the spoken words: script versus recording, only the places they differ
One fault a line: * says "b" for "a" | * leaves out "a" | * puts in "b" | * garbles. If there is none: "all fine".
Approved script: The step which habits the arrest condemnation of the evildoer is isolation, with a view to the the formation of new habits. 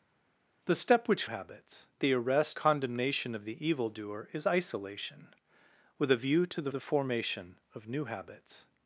all fine